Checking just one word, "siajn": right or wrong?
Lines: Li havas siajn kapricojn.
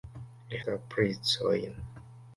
wrong